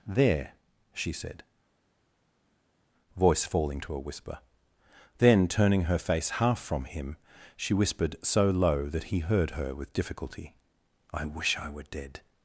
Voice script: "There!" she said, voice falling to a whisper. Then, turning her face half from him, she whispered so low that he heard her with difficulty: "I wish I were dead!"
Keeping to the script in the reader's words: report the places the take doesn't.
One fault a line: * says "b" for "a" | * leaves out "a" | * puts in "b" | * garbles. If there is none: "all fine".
all fine